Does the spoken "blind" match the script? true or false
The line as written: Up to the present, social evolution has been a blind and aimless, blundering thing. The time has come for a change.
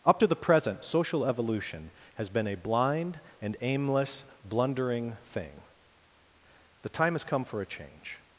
true